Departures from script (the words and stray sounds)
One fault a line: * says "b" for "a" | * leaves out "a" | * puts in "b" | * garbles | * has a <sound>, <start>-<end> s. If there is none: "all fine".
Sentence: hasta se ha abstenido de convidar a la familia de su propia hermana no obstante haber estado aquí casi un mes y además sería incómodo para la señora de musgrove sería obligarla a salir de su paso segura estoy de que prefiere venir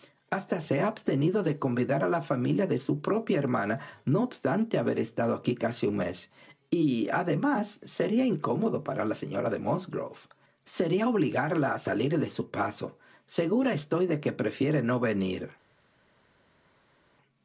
* puts in "no"